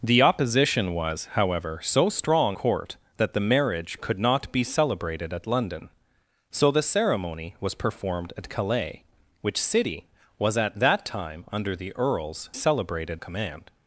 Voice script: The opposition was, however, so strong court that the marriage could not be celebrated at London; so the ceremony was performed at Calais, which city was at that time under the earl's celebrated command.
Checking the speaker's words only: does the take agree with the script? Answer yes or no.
yes